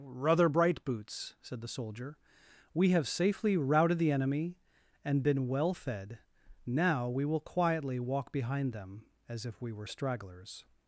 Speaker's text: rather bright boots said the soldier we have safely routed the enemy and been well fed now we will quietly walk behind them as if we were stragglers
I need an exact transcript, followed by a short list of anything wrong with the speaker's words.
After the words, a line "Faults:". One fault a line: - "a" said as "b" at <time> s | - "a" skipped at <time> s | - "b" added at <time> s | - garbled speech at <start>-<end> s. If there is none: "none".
rather bright boots said the soldier we have safely routed the enemy and been well fed now we will quietly walk behind them as if we were stragglers
Faults:
none